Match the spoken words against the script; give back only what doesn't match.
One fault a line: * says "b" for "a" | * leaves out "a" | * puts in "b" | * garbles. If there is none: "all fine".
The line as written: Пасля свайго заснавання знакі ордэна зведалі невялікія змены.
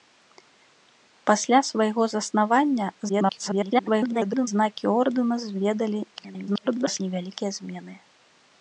* garbles
* garbles